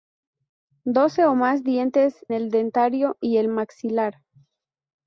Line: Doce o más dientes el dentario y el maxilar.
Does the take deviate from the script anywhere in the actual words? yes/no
no